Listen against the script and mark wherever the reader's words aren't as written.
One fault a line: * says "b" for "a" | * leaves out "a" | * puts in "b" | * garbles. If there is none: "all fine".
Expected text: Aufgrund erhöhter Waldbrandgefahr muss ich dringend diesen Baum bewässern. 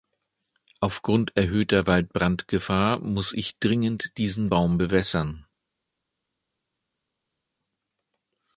all fine